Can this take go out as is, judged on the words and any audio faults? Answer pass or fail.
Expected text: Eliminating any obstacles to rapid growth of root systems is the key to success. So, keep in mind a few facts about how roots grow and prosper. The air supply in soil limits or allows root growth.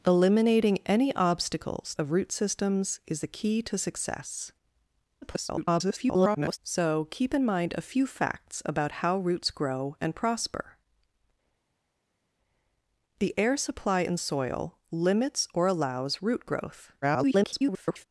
fail